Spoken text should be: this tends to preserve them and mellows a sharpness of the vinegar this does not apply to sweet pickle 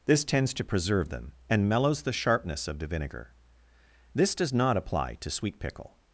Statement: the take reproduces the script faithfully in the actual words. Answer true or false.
false